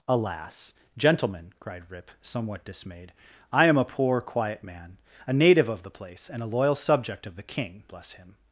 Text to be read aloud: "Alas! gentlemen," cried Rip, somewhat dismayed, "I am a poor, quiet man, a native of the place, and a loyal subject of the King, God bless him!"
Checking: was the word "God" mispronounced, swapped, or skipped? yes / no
yes